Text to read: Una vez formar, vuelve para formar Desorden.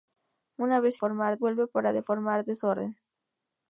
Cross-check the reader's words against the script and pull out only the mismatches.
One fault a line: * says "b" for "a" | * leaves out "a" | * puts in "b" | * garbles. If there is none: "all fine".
all fine